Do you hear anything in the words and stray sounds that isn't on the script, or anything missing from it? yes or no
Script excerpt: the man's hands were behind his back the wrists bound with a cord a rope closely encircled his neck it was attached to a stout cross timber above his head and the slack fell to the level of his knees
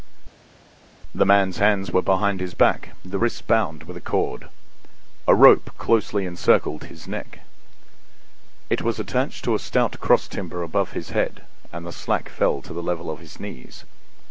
no